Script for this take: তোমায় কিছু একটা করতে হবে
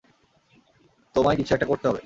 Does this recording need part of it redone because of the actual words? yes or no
no